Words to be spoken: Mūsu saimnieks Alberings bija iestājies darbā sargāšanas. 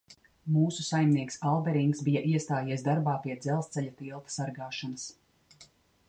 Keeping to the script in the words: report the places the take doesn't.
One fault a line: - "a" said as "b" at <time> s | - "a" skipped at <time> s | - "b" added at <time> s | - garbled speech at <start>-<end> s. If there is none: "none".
- "pie dzelzceļa tilta" added at 3.2 s